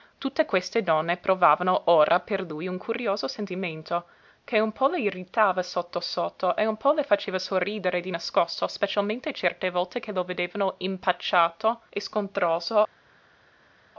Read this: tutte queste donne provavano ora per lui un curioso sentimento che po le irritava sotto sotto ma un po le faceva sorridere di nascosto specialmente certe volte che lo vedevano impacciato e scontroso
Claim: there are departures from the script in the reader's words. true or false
true